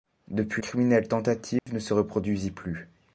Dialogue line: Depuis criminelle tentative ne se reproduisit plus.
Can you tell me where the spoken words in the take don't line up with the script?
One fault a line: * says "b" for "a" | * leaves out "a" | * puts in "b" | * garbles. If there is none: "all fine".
all fine